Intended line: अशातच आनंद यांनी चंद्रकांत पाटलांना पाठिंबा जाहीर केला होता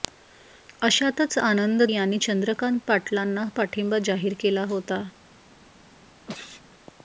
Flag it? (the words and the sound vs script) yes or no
yes